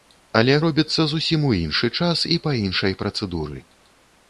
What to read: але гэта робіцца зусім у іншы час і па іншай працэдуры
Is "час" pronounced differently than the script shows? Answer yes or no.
no